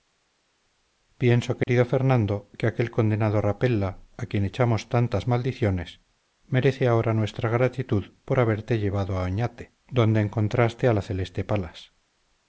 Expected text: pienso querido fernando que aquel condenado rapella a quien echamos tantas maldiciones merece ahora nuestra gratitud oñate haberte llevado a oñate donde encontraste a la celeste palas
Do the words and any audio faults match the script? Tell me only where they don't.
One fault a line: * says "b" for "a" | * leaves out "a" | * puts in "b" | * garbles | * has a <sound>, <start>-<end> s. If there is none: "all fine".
* has a dropout, 1.6-1.7 s
* says "por" for "oñate"